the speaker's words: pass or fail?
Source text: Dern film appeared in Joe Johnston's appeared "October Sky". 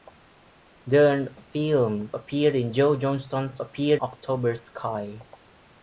pass